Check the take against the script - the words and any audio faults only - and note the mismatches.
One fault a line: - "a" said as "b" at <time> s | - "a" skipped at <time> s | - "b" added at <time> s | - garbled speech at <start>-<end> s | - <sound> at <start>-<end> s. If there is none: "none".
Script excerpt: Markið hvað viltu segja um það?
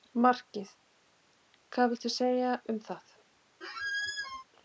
- squeak at 3.6-4.4 s